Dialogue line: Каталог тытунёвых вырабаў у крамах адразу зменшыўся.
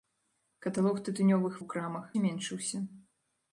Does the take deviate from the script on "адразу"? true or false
true